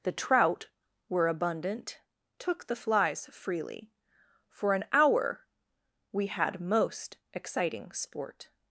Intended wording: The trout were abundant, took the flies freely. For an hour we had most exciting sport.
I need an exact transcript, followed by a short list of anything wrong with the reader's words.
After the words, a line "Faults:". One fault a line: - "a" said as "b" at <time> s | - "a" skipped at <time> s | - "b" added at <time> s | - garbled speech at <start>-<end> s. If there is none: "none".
The trout were abundant, took the flies freely. For an hour we had most exciting sport.
Faults:
none